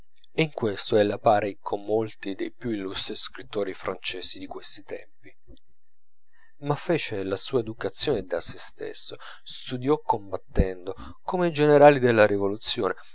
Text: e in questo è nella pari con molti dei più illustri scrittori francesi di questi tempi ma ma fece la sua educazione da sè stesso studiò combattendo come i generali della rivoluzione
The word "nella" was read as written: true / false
false